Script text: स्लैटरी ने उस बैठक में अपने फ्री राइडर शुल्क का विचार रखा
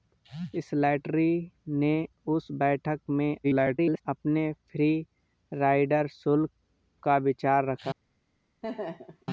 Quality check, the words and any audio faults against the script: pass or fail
fail